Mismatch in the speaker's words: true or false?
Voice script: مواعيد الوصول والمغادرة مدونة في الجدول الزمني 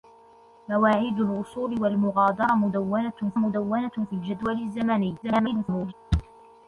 true